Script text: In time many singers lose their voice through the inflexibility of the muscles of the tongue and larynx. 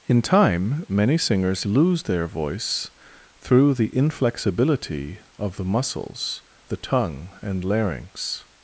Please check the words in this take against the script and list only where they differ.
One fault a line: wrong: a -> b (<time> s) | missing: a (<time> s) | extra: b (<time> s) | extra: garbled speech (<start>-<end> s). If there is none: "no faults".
missing: of (6.4 s)